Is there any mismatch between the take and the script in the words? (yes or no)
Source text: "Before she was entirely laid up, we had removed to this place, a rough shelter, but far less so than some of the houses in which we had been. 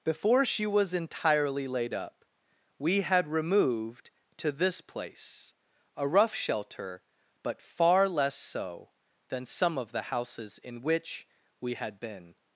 no